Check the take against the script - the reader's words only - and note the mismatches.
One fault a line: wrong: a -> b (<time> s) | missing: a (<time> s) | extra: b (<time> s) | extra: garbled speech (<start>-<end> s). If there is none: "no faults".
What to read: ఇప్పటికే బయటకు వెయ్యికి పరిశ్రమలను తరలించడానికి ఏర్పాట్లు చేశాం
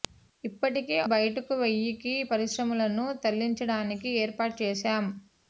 no faults